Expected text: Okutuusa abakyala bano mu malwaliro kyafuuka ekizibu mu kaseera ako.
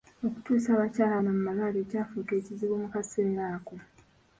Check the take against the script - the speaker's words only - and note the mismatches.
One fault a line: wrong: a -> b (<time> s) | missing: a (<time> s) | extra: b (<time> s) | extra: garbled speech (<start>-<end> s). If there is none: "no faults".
no faults